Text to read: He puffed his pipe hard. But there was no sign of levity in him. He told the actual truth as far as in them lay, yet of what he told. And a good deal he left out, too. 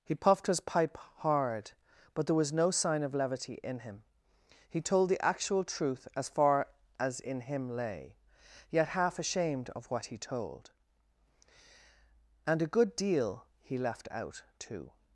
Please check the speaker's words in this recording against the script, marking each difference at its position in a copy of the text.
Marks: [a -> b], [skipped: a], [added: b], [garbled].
He puffed his pipe hard. But there was no sign of levity in him. He told the actual truth as far as in [them -> him] lay, yet [added: half ashamed] of what he told. And a good deal he left out, too.